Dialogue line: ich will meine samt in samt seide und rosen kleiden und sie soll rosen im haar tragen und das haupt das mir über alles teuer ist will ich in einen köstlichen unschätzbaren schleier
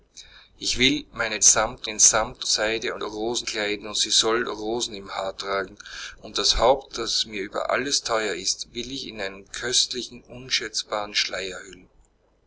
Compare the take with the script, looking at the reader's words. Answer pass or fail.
pass